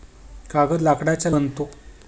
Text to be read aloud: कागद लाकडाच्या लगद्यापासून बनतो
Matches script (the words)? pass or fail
fail